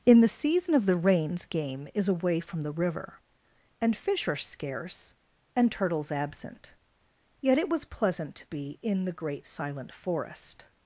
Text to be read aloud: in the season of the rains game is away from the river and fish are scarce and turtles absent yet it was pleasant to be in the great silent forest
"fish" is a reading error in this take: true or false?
false